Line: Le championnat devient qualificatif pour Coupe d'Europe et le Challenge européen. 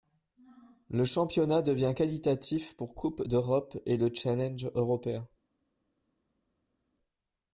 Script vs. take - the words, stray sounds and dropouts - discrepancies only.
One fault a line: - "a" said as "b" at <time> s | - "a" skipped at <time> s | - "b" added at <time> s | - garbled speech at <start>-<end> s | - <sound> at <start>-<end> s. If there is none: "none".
none